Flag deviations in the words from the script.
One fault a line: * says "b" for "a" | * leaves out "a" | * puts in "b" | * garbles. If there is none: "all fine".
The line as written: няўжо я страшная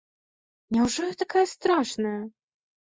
* puts in "такая"